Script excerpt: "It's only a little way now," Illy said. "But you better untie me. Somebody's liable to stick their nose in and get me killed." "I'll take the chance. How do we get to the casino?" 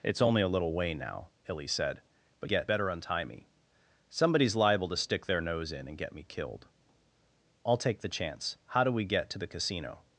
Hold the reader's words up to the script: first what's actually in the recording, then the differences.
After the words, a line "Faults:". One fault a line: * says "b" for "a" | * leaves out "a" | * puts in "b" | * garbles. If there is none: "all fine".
"It's only a little way now," Illy said. "But get better untie me. Somebody's liable to stick their nose in and get me killed." "I'll take the chance. How do we get to the casino?"
Faults:
* says "get" for "you"